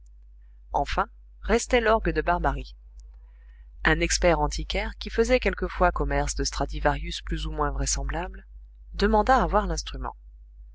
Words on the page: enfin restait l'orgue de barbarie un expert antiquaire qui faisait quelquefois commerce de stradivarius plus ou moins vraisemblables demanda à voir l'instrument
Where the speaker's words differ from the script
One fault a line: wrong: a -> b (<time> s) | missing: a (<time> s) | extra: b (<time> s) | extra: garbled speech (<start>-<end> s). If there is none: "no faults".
no faults